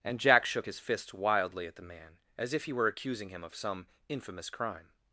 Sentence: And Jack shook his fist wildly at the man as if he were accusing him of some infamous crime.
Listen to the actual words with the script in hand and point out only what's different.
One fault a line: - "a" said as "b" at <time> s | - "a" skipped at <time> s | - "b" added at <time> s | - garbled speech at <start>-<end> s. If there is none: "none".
none